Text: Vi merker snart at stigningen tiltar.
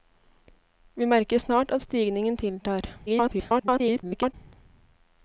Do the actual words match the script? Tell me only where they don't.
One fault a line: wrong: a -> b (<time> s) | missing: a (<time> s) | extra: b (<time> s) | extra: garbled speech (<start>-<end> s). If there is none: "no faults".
extra: garbled speech (3.1-4.3 s)